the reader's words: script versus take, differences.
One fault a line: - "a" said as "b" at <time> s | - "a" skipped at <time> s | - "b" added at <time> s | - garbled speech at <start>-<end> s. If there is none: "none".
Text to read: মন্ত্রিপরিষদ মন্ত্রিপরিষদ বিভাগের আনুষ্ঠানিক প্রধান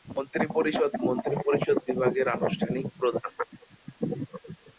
none